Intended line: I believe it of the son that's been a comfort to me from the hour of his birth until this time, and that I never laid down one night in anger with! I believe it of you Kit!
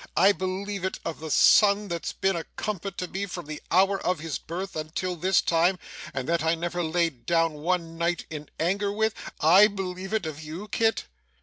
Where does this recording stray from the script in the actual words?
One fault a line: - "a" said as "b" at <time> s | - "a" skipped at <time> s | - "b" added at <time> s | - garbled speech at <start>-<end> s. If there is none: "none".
none